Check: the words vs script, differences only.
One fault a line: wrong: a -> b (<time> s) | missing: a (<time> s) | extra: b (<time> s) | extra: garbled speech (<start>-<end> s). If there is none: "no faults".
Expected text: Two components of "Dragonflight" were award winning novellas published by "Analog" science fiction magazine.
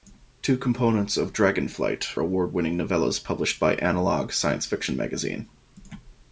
missing: were (2.2 s)